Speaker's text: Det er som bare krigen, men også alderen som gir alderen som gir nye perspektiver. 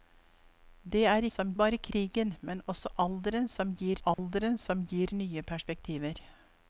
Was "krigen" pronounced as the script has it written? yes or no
yes